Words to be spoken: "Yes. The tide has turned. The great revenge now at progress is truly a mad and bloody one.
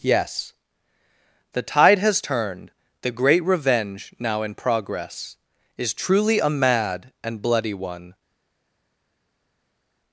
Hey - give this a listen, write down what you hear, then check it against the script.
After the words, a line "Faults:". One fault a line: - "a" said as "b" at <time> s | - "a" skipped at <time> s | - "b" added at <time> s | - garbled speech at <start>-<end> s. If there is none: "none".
"Yes. The tide has turned. The great revenge now in progress is truly a mad and bloody one.
Faults:
- "at" said as "in" at 4.4 s